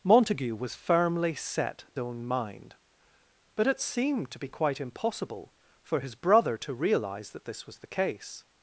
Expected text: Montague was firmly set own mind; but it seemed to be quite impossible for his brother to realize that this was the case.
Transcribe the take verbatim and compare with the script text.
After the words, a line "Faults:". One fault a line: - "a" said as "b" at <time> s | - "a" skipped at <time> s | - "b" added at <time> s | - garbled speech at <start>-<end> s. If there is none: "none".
Montague was firmly set own mind; but it seemed to be quite impossible for his brother to realize that this was the case.
Faults:
none